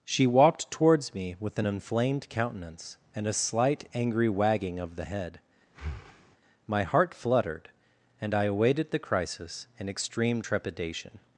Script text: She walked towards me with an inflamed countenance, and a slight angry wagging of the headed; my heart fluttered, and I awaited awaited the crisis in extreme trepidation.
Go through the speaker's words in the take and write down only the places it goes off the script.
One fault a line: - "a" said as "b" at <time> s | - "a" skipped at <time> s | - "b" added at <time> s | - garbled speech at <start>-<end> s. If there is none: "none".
- "headed" said as "head" at 5.0 s
- "awaited" skipped at 8.9 s